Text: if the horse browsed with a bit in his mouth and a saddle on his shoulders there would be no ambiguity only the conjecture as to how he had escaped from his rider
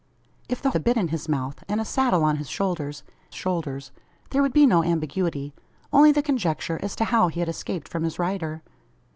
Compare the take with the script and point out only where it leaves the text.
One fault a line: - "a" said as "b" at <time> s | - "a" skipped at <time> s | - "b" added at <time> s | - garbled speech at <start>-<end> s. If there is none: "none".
- "horse browsed with" skipped at 0.7 s
- "shoulders" added at 3.3 s